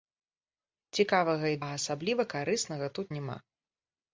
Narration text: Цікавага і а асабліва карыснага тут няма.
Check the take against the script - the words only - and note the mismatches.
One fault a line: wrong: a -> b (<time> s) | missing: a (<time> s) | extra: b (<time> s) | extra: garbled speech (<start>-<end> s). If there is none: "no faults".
no faults